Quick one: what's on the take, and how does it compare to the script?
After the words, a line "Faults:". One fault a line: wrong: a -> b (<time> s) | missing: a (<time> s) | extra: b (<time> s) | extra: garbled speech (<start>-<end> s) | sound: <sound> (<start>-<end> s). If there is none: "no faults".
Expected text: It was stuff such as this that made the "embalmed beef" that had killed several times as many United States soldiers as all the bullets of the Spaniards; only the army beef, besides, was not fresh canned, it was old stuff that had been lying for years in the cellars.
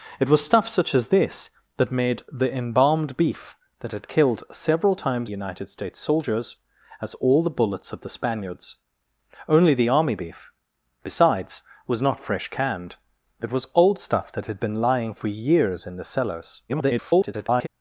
It was stuff such as this that made the "embalmed beef" that had killed several times United States soldiers as all the bullets of the Spaniards; only the army beef, besides, was not fresh canned, it was old stuff that had been lying for years in the cellars. [garbled]
Faults:
missing: as many (5.3 s)
extra: garbled speech (16.7-17.7 s)